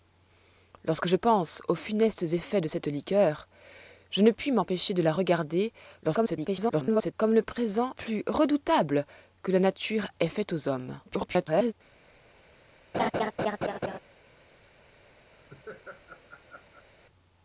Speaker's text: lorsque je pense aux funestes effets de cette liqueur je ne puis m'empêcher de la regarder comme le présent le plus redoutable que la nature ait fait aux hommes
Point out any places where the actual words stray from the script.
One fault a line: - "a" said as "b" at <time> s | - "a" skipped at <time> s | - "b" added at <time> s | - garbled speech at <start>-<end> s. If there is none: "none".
- garbled speech at 6.0-7.1 s
- "le" skipped at 8.0 s
- garbled speech at 11.1-11.7 s